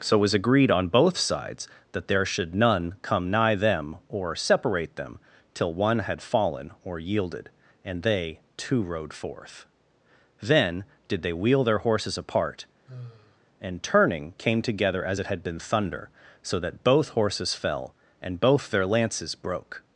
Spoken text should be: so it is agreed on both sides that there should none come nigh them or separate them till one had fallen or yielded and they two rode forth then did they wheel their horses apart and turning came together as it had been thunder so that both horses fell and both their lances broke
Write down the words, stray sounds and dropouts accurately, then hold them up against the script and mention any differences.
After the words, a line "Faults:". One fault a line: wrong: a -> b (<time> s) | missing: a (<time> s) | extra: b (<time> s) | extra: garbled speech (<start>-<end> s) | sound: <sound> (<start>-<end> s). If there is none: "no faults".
so it was agreed on both sides that there should none come nigh them or separate them till one had fallen or yielded and they two rode forth then did they wheel their horses apart and turning came together as it had been thunder so that both horses fell and both their lances broke
Faults:
wrong: is -> was (0.2 s)
sound: sigh (12.9-13.4 s)